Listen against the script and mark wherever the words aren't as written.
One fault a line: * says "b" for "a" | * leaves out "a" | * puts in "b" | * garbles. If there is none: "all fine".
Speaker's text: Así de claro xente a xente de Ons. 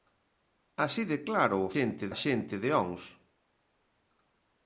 all fine